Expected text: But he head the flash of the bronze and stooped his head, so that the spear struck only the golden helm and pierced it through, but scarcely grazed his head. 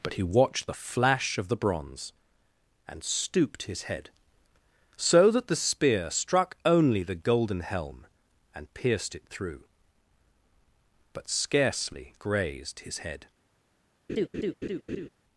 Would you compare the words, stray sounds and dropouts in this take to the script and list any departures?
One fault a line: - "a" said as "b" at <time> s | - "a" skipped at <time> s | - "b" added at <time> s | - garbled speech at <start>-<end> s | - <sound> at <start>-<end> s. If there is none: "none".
- "head" said as "watched" at 0.2 s
- laugh at 14.1-15.1 s